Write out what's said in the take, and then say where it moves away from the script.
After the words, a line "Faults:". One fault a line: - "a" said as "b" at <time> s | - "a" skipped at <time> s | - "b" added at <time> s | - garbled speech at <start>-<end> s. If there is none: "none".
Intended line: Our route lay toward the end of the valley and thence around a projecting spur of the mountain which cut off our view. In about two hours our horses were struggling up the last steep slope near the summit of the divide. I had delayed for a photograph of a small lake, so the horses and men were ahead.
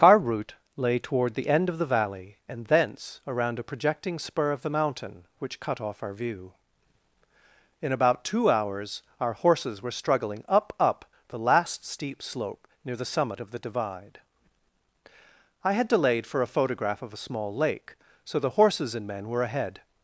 Our route lay toward the end of the valley and thence around a projecting spur of the mountain which cut off our view. In about two hours our horses were struggling up up the last steep slope near the summit of the divide. I had delayed for a photograph of a small lake, so the horses and men were ahead.
Faults:
- "up" added at 10.8 s